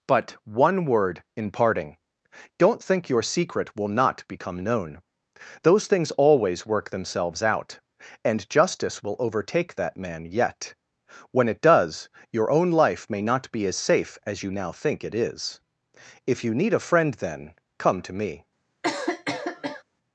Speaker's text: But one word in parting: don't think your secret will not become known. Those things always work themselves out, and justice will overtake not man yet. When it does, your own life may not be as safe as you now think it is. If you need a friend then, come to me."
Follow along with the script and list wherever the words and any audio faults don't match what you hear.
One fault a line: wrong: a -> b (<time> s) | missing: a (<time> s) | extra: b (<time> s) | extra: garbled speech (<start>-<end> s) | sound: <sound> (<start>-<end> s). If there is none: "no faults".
wrong: not -> that (9.8 s)
sound: cough (18.8-19.8 s)